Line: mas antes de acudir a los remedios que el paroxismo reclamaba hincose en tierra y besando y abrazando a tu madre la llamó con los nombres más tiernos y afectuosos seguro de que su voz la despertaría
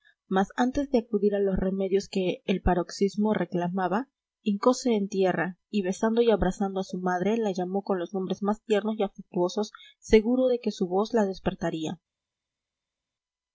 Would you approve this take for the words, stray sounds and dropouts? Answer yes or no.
no